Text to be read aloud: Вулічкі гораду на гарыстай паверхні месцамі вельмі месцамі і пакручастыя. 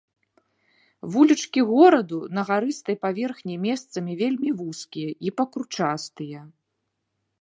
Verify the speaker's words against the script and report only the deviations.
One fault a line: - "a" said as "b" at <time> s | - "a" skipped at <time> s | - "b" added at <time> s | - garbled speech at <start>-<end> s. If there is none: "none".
- "месцамі" said as "вузкія" at 4.6 s